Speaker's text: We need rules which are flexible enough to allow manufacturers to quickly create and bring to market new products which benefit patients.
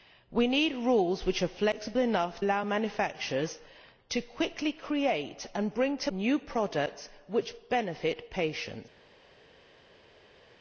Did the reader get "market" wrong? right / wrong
wrong